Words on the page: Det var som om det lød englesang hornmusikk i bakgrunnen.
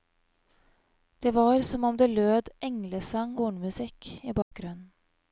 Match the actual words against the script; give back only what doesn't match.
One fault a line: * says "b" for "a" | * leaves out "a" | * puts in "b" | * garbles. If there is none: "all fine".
all fine